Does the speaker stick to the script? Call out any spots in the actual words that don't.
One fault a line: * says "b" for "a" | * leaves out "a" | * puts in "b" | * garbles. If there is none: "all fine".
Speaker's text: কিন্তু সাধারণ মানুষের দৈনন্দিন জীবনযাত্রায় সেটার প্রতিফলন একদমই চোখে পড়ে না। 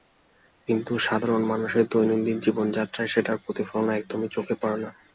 all fine